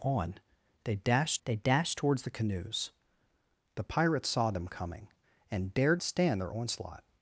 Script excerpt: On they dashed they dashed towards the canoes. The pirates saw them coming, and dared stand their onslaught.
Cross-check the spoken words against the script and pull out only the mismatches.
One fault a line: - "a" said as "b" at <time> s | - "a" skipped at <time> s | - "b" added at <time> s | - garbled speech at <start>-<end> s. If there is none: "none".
none